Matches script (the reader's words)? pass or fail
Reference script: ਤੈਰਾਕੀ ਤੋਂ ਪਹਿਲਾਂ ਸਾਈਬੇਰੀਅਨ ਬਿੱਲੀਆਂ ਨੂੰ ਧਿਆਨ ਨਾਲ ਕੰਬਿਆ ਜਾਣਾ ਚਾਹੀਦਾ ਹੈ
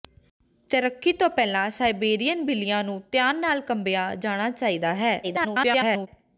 fail